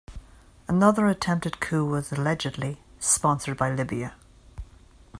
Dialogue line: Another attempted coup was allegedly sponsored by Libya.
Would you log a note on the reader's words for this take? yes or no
no